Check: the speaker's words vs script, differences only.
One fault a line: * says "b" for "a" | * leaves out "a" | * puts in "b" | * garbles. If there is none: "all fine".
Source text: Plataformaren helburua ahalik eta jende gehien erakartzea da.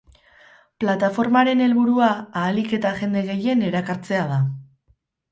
all fine